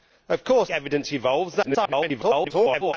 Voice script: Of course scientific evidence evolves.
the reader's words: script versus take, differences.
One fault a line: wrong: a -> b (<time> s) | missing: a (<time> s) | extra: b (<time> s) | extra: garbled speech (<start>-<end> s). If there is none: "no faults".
missing: scientific (0.7 s)
extra: garbled speech (1.6-2.9 s)